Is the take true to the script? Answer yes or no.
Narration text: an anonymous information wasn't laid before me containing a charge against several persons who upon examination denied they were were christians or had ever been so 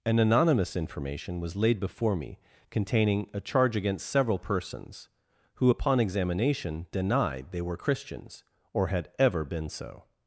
no